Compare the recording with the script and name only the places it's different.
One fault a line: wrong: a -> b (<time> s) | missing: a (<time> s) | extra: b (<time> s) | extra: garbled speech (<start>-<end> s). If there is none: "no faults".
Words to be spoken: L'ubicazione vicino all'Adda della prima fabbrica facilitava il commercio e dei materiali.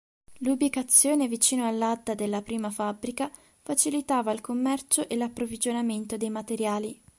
extra: l'approvvigionamento (5.2 s)